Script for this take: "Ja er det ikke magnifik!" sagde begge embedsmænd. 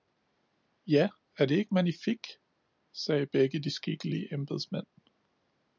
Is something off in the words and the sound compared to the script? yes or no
yes